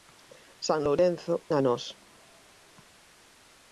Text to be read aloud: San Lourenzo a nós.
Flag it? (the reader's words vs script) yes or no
no